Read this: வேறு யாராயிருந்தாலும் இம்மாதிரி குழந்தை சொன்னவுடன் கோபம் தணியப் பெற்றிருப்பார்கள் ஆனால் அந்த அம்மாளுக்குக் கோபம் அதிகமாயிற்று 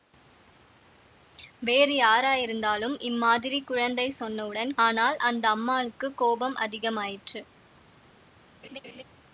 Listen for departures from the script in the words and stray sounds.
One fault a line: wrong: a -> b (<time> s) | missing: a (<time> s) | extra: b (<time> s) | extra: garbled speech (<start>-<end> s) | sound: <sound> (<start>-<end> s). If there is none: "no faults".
missing: கோபம் தணியப் பெற்றிருப்பார்கள் (4.7 s)
sound: laugh (8.6-9.0 s)